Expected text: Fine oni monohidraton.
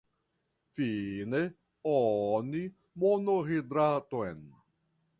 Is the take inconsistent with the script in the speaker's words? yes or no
no